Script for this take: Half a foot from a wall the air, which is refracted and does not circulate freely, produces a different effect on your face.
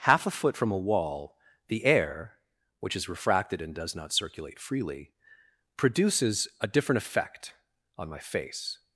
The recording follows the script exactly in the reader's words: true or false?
false